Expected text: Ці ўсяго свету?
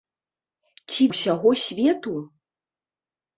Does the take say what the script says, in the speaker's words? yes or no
yes